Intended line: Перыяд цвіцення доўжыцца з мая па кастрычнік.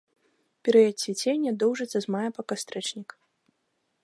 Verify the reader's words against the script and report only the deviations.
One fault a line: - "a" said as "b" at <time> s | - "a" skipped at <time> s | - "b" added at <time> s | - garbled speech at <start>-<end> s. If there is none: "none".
none